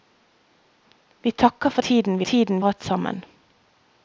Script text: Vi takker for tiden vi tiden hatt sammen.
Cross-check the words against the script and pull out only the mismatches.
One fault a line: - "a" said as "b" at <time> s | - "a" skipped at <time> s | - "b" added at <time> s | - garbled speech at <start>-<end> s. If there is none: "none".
none